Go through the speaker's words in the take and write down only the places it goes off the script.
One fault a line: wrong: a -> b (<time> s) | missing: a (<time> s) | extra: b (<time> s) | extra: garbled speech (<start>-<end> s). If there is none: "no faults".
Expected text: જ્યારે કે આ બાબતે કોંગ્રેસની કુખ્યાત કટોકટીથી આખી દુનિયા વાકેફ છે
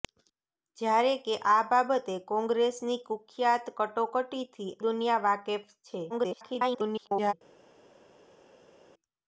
missing: આખી (4.7 s)
extra: garbled speech (6.1-7.3 s)